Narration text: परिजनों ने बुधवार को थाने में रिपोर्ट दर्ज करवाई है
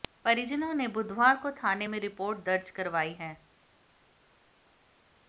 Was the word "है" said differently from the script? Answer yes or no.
no